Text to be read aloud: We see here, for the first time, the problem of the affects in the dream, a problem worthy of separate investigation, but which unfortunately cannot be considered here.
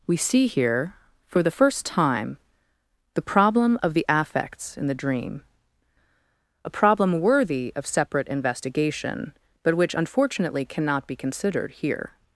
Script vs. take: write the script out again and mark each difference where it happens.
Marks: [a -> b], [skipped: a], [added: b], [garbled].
We see here, for the first time, the problem of the affects in the dream, a problem worthy of separate investigation, but which unfortunately cannot be considered here.